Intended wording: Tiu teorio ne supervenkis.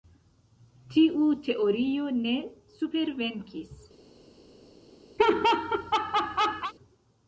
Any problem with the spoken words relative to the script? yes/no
no